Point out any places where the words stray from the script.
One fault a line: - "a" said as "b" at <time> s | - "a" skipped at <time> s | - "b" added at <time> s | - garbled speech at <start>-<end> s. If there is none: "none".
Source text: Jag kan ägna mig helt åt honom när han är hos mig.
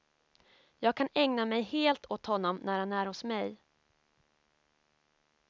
none